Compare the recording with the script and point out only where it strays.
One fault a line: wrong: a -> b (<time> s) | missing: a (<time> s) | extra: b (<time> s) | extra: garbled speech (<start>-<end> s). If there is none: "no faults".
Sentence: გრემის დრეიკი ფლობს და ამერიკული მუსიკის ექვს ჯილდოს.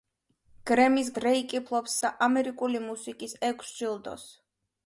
no faults